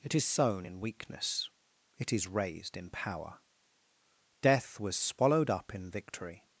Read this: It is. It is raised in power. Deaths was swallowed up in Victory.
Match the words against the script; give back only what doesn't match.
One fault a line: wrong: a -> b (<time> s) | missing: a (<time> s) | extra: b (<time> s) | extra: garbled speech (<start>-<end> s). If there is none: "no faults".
extra: sown in weakness (0.2 s)
wrong: Deaths -> Death (4.4 s)